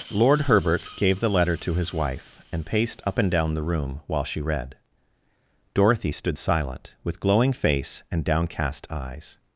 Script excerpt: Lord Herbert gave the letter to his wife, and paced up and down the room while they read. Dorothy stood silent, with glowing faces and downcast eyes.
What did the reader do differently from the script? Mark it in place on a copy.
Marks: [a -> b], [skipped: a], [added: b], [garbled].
Lord Herbert gave the letter to his wife, and paced up and down the room while [they -> she] read. Dorothy stood silent, with glowing [faces -> face] and downcast eyes.